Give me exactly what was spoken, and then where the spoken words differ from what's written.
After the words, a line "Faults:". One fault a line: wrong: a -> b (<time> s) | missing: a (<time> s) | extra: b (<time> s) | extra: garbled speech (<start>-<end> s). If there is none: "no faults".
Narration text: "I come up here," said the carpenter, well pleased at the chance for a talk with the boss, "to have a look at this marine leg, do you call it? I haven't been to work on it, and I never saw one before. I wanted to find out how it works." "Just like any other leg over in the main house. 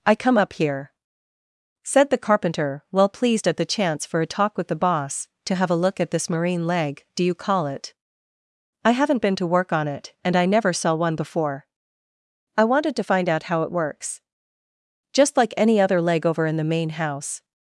"I come up here," said the carpenter, well pleased at the chance for a talk with the boss, "to have a look at this marine leg, do you call it? I haven't been to work on it, and I never saw one before. I wanted to find out how it works." "Just like any other leg over in the main house.
Faults:
no faults